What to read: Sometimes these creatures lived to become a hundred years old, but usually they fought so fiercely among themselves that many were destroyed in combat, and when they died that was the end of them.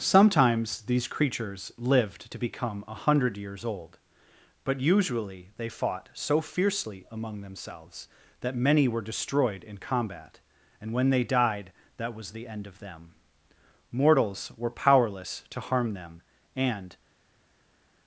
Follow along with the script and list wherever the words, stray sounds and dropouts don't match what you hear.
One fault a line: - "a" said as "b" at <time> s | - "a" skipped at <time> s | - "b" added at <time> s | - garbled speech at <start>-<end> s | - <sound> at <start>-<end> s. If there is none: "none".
- "Mortals were powerless to harm them and" added at 13.9 s